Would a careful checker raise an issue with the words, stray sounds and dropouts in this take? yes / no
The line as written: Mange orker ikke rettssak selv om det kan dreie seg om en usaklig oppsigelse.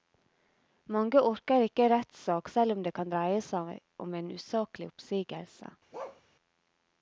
yes